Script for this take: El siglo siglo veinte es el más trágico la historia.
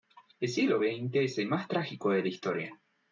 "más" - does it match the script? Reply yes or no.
yes